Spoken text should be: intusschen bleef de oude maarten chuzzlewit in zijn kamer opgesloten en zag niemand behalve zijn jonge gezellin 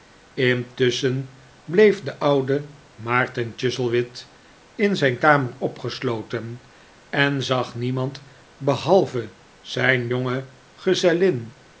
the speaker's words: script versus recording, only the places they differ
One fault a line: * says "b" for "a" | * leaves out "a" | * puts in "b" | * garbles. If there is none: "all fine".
all fine